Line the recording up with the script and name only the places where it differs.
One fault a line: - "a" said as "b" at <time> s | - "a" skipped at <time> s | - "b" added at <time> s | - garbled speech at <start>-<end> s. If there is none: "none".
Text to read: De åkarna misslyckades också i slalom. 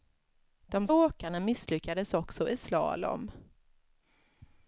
none